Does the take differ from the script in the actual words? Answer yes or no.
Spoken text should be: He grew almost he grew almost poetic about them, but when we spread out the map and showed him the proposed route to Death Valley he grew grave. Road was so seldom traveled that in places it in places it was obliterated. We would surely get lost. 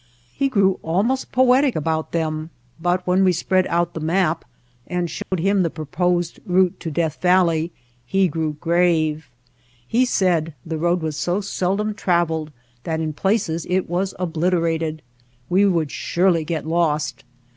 yes